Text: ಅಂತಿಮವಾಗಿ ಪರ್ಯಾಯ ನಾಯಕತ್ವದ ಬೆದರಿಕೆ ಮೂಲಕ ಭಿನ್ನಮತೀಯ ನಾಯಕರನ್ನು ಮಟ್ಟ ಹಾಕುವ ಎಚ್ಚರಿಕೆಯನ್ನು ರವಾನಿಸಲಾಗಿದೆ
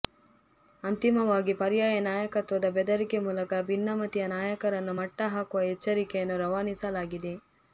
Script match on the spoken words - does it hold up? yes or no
yes